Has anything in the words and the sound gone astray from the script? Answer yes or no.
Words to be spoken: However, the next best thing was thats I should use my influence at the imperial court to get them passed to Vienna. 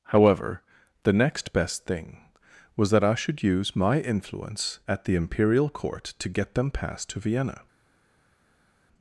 yes